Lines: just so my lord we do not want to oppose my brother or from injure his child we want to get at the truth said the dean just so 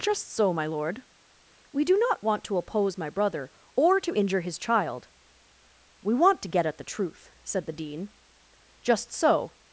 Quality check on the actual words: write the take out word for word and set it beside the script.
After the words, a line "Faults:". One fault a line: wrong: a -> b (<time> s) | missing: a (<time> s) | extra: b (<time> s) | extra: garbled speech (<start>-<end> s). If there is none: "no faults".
just so my lord we do not want to oppose my brother or to injure his child we want to get at the truth said the dean just so
Faults:
wrong: from -> to (4.0 s)